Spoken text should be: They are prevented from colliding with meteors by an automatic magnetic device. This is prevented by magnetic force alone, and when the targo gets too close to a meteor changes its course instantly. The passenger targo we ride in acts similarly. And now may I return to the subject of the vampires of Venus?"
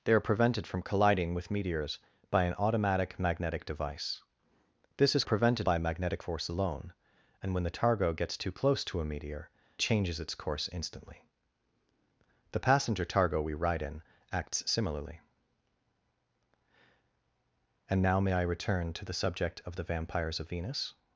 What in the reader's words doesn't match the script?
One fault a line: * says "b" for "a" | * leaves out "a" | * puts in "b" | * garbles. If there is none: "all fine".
all fine